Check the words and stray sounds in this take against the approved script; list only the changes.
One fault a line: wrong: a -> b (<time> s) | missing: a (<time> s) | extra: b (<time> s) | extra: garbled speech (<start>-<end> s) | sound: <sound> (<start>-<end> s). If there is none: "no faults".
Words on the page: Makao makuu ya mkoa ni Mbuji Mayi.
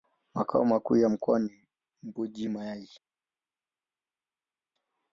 no faults